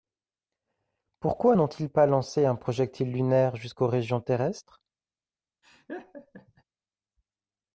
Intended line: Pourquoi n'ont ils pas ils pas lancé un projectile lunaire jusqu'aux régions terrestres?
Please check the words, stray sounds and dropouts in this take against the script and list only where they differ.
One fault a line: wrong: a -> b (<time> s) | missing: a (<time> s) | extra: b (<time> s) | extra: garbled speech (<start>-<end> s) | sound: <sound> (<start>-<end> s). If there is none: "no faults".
missing: ils pas (2.1 s)
sound: laugh (5.6-6.6 s)